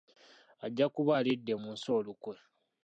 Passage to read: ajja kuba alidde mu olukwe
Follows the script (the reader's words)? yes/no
no